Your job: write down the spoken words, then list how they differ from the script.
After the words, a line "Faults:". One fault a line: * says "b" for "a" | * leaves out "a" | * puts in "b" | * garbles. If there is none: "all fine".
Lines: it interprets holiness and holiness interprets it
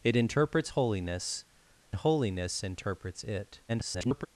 it interprets holiness holiness interprets it [garbled]
Faults:
* leaves out "and"
* garbles